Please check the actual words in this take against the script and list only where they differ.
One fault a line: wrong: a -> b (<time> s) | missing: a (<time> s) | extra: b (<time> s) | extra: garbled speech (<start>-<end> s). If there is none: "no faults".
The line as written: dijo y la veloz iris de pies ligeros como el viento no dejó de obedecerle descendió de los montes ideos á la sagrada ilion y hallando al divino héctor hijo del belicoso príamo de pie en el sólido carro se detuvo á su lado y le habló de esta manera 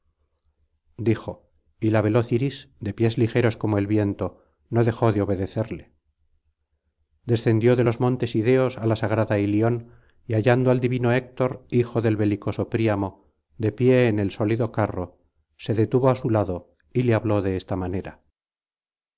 no faults